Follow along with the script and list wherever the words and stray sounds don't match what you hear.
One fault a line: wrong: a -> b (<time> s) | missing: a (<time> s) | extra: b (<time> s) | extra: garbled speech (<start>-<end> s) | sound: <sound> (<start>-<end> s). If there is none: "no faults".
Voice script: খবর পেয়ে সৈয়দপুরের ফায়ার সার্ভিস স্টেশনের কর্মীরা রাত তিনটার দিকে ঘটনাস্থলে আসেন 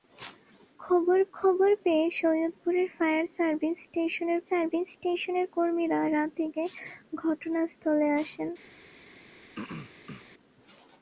extra: খবর (1.3 s)
extra: সার্ভিস স্টেশনের (4.5 s)
missing: তিনটার (6.3 s)
sound: throat clearing (9.6-10.3 s)